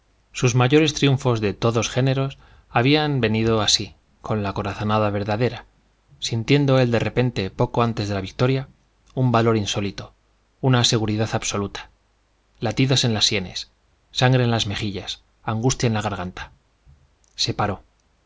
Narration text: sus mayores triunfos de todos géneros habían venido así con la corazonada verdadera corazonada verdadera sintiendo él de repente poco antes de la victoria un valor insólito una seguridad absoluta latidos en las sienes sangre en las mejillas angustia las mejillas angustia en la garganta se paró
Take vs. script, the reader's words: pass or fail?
fail